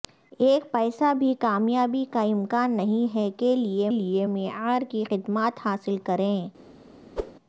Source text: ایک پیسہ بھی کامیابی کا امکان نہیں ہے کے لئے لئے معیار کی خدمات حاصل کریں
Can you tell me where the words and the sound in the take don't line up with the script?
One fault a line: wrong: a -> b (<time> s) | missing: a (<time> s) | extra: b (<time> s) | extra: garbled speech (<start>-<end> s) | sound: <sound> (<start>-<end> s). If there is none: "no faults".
sound: whoosh (7.2-7.3 s)